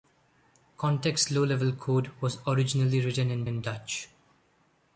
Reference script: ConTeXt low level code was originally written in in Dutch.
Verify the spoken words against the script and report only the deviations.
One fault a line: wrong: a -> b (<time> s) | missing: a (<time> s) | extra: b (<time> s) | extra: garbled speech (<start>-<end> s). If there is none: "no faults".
no faults